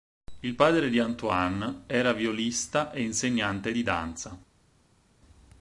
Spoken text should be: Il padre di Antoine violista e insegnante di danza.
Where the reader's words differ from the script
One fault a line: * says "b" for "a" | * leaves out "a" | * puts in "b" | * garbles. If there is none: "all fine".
* puts in "era"